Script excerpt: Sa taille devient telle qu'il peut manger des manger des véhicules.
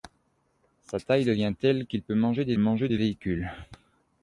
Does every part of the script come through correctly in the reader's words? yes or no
yes